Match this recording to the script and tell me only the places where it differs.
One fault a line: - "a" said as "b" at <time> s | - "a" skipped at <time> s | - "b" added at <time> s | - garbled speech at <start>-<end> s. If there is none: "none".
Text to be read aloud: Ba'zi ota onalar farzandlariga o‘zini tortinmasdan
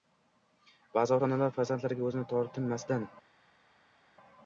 none